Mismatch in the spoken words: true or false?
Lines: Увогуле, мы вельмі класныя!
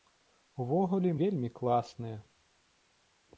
true